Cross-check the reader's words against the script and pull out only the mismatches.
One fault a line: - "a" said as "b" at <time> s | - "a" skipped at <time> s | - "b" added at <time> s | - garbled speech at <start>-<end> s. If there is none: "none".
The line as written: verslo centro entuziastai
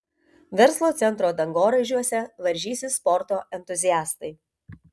- "dangoraižiuose varžysis sporto" added at 1.4 s